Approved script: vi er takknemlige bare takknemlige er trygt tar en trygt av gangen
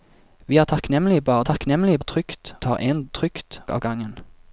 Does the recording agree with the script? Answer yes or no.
yes